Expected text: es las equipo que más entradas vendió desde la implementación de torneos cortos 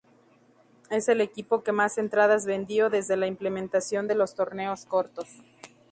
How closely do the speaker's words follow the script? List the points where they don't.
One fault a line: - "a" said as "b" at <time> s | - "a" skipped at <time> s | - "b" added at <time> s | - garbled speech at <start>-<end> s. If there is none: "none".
- "las" said as "el" at 1.1 s
- "los" added at 4.2 s